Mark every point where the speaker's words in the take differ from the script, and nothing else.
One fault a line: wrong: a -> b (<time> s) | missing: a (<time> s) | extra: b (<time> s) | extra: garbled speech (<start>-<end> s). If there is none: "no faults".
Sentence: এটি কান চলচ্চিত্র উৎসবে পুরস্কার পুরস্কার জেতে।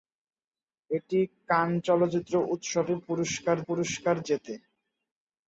no faults